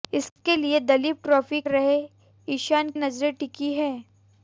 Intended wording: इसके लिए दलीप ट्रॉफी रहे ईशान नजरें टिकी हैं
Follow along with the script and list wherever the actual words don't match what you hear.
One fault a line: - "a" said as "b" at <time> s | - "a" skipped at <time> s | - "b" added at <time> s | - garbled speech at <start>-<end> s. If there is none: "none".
none